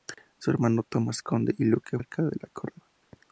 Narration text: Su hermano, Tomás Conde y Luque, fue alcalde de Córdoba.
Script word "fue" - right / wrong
wrong